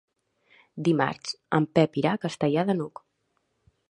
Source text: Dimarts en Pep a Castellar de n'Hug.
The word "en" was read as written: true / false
true